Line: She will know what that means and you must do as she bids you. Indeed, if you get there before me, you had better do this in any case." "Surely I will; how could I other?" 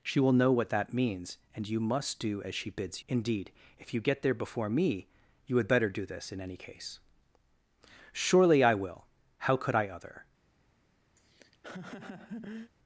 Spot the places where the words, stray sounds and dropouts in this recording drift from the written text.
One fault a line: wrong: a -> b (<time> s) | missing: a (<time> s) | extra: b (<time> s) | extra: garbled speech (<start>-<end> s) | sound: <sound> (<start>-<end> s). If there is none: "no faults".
missing: you (3.0 s)
sound: laugh (11.2-12.7 s)